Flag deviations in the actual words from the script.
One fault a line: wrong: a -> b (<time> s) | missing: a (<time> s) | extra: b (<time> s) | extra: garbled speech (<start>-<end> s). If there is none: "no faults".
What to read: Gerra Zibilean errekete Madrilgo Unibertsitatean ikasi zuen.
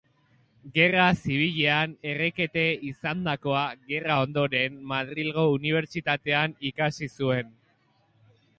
extra: izandakoa gerra ondoren (2.9 s)